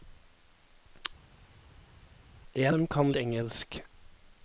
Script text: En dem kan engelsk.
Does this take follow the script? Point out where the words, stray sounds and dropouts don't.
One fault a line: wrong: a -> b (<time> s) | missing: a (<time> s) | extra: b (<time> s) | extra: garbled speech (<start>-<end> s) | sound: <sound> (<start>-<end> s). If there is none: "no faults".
no faults